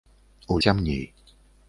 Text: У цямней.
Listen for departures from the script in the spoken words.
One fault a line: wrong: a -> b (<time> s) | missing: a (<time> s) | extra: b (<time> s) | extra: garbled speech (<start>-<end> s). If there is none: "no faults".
no faults